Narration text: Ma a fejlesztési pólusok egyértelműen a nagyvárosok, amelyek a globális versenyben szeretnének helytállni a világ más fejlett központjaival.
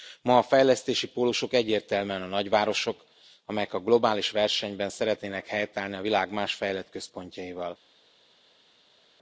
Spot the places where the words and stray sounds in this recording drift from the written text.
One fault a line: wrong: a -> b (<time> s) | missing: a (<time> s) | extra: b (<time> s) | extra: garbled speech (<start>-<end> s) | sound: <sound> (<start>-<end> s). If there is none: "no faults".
no faults